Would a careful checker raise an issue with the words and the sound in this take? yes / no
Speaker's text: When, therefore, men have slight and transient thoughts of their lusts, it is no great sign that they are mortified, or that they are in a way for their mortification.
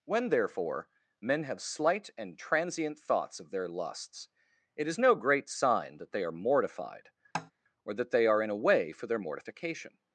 yes